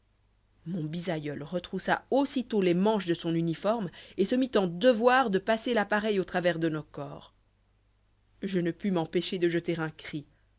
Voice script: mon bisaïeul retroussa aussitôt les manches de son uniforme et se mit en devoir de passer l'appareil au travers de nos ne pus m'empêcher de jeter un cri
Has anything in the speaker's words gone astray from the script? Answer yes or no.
yes